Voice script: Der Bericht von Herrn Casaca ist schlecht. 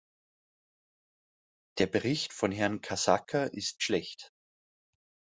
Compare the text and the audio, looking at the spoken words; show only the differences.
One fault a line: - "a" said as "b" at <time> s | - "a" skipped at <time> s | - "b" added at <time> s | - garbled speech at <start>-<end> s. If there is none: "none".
none